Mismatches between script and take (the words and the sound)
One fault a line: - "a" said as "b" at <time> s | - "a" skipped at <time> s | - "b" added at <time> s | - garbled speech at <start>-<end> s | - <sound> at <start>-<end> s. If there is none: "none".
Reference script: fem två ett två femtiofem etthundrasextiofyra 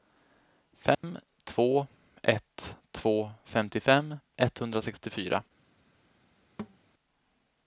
- dropout at 0.9-1.0 s
- thud at 6.6-6.8 s